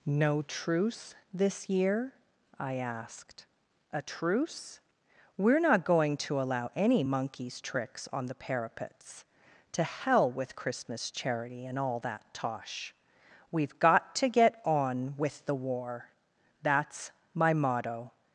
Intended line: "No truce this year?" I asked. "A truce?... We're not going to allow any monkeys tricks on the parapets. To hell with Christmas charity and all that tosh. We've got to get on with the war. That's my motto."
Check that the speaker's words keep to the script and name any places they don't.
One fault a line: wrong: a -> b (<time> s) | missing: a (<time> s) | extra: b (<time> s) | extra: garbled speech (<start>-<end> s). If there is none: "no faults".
no faults